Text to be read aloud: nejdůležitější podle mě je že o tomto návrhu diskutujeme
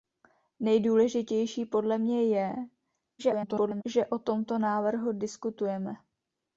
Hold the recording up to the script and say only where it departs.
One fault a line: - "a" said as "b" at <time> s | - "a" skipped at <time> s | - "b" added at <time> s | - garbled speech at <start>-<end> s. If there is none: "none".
- garbled speech at 3.2-3.8 s